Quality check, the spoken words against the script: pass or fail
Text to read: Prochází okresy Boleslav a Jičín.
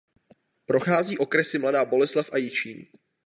fail